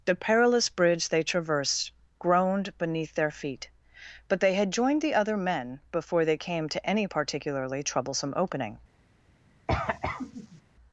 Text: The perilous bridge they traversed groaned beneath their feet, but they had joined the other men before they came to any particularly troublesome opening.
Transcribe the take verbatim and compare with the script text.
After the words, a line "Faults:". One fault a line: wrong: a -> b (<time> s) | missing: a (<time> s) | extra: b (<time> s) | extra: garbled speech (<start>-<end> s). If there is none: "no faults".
The perilous bridge they traversed groaned beneath their feet, but they had joined the other men before they came to any particularly troublesome opening.
Faults:
no faults